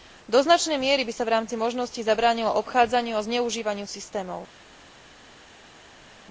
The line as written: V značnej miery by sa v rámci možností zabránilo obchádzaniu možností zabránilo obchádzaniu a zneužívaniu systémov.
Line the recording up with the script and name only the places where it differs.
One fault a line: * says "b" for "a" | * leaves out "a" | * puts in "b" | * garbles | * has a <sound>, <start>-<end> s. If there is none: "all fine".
* says "Do" for "V"
* leaves out "možností zabránilo obchádzaniu"